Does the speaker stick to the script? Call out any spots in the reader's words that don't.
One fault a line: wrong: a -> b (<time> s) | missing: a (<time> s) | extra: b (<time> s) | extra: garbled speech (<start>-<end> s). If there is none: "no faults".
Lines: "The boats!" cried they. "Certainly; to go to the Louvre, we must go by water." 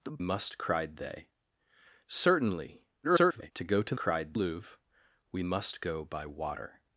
wrong: boats -> must (0.2 s)
extra: garbled speech (3.0-3.5 s)
wrong: the -> cried (3.9 s)